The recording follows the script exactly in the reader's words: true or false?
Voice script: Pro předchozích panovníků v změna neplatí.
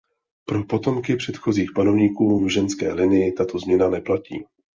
false